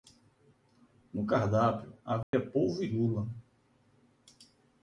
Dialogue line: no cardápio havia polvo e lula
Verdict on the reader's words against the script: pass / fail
pass